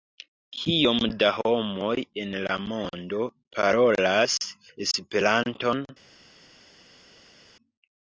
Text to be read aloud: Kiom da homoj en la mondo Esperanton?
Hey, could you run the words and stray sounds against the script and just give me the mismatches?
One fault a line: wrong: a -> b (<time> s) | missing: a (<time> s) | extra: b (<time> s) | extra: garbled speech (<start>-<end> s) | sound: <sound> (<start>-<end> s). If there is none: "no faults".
extra: parolas (3.6 s)